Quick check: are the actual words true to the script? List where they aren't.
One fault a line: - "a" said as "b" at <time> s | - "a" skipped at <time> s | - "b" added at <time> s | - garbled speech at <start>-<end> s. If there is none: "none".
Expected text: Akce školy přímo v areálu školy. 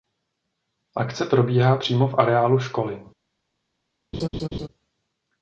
- "školy" said as "probíhá" at 1.2 s